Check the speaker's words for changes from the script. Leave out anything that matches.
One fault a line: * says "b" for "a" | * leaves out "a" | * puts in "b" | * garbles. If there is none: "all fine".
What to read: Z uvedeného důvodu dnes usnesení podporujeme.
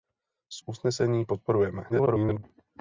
* leaves out "uvedeného důvodu dnes"
* garbles